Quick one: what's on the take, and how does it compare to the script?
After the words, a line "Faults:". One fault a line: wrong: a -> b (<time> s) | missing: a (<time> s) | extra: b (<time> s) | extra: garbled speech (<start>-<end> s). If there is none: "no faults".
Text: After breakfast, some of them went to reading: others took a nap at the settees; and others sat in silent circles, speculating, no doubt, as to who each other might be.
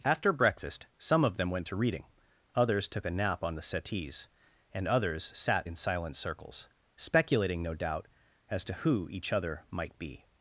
After breakfast, some of them went to reading: others took a nap on the settees; and others sat in silent circles, speculating, no doubt, as to who each other might be.
Faults:
wrong: at -> on (3.4 s)